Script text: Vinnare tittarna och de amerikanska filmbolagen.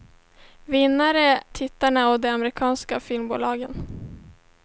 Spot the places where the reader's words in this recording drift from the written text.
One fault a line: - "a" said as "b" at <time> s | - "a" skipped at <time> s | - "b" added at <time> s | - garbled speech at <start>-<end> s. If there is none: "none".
none